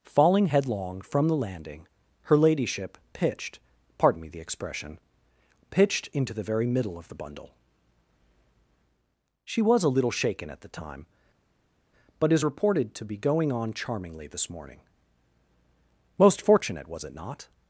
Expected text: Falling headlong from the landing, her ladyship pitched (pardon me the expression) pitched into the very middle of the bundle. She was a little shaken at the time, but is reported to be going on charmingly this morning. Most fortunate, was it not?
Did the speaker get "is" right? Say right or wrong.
right